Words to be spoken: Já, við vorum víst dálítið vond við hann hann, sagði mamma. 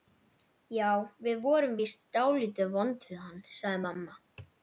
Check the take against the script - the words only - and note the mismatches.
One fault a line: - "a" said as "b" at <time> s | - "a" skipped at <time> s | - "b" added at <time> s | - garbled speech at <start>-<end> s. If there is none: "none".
- "hann" skipped at 3.4 s